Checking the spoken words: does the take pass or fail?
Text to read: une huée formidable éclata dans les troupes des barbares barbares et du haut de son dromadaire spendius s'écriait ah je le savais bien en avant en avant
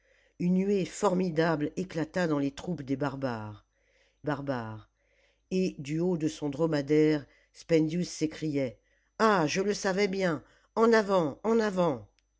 pass